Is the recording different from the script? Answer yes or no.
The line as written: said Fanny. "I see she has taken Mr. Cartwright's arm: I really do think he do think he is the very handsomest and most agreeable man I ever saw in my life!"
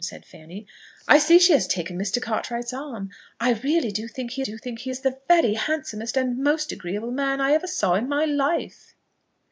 no